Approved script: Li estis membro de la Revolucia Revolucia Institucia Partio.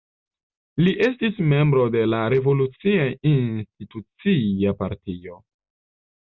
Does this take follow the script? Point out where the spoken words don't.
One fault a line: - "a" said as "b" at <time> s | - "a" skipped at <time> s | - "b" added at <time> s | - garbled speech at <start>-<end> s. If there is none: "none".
- "Revolucia" skipped at 3.0 s